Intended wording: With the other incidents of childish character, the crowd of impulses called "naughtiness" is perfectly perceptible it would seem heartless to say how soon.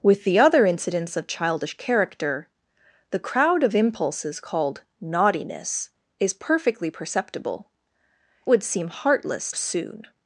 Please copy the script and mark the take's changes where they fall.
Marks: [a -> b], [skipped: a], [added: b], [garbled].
With the other incidents of childish character, the crowd of impulses called "naughtiness" is perfectly perceptible [skipped: it] would seem heartless [skipped: to say how] soon.